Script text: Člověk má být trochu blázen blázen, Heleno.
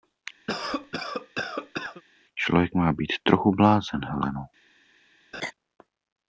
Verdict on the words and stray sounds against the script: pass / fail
fail